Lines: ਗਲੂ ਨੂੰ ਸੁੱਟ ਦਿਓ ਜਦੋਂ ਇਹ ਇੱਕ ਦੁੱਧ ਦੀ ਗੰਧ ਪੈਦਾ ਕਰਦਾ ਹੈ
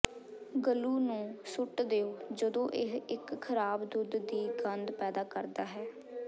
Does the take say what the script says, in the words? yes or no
no